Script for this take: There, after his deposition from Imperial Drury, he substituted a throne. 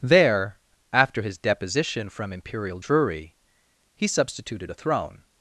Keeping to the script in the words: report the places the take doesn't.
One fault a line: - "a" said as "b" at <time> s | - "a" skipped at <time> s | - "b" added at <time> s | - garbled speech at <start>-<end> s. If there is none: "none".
none